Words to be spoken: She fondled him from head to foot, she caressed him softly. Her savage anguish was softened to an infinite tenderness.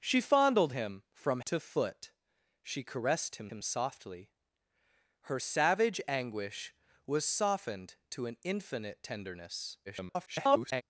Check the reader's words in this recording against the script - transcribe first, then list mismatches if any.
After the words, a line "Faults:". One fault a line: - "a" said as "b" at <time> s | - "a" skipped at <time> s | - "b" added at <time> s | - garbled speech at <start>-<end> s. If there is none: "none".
She fondled him from to foot, she caressed him him softly. Her savage anguish was softened to an infinite tenderness. [garbled]
Faults:
- "head" skipped at 1.4 s
- "him" added at 3.5 s
- garbled speech at 9.9-10.8 s